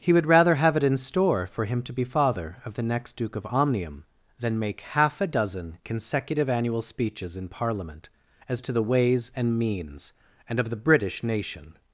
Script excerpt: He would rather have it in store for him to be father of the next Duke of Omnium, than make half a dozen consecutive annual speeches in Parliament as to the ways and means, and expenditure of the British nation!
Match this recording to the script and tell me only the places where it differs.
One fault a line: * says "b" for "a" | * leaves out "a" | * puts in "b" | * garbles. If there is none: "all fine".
* leaves out "expenditure"